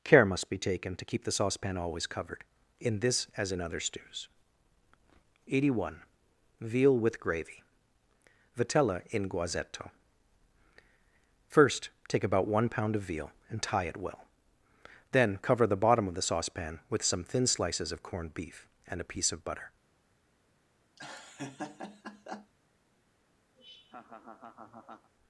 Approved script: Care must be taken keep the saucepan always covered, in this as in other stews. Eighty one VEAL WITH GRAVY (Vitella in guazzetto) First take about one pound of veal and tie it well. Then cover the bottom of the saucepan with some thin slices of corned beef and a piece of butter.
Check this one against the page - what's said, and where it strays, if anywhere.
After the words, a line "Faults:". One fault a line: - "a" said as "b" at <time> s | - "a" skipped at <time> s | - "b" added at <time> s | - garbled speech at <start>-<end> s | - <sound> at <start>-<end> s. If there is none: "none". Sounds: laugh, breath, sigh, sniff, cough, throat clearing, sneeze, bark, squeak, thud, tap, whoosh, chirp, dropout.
Care must be taken to keep the saucepan always covered, in this as in other stews. Eighty one VEAL WITH GRAVY (Vitella in guazzetto) First take about one pound of veal and tie it well. Then cover the bottom of the saucepan with some thin slices of corned beef and a piece of butter.
Faults:
- "to" added at 0.9 s
- laugh at 21.0-22.5 s
- laugh at 23.5-25.1 s